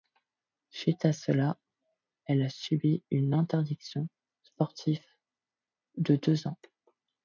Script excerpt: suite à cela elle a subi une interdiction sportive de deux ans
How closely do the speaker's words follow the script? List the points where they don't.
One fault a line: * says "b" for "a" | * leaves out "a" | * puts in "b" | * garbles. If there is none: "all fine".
all fine